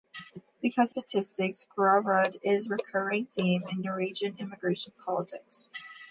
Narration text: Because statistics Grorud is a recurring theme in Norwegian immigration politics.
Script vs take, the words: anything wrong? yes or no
no